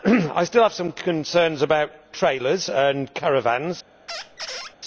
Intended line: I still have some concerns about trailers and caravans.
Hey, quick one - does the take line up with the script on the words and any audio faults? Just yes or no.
no